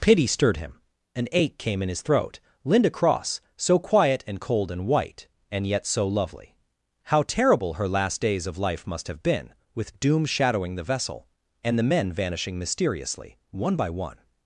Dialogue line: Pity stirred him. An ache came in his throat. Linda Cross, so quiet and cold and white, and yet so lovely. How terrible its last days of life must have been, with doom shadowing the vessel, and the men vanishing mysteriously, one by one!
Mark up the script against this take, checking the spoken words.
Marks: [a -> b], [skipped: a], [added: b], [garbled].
Pity stirred him. An ache came in his throat. Linda Cross, so quiet and cold and white, and yet so lovely. How terrible [its -> her] last days of life must have been, with doom shadowing the vessel, and the men vanishing mysteriously, one by one!